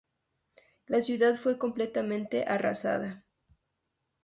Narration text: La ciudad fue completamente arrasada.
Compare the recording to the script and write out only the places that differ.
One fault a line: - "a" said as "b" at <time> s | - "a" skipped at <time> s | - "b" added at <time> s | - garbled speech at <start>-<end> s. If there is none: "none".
none